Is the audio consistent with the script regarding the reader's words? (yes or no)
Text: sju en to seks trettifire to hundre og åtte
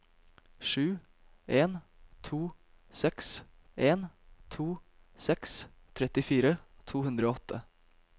no